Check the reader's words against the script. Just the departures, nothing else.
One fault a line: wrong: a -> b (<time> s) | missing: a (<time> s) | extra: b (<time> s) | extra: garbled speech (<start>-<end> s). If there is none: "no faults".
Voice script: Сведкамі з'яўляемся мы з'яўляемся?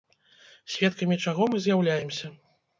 wrong: з'яўляемся -> чаго (1.3 s)